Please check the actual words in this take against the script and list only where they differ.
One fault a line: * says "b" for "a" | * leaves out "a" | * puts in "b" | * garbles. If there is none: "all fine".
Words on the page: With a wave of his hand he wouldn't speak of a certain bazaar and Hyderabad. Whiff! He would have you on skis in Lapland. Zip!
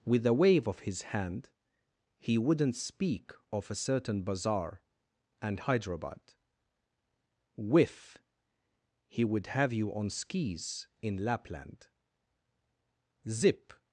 all fine